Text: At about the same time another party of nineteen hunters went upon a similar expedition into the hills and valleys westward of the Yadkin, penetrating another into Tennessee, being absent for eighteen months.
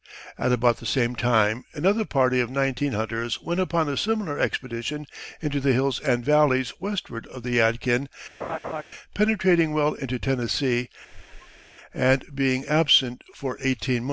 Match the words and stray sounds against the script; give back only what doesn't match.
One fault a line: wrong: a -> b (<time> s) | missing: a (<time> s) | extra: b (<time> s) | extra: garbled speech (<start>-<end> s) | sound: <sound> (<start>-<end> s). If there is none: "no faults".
sound: laugh (8.4-8.8 s)
wrong: another -> well (9.7 s)
sound: squeak (11.1-11.7 s)
extra: and (11.9 s)